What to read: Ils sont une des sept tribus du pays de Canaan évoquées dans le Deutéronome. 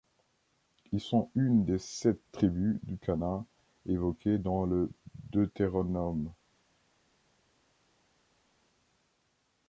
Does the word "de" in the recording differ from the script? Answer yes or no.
yes